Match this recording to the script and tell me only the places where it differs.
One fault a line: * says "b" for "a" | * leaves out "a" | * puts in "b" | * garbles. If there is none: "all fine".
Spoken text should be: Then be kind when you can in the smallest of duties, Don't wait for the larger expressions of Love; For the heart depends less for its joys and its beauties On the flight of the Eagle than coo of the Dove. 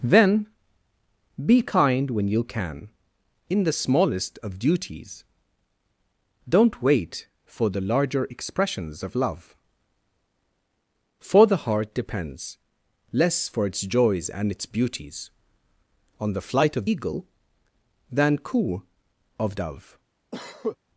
* leaves out "the"
* leaves out "the"